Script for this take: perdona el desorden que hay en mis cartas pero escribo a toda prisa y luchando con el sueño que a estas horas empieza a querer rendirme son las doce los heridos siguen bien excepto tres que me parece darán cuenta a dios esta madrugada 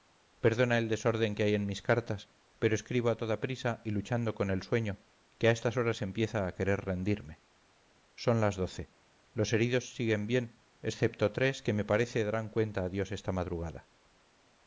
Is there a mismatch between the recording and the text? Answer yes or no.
no